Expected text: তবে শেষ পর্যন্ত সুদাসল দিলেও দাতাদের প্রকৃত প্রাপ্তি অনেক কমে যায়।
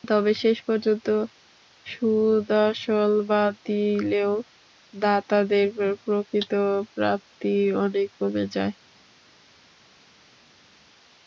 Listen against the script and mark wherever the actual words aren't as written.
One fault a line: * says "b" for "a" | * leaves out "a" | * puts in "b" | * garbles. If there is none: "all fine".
* puts in "বাদ"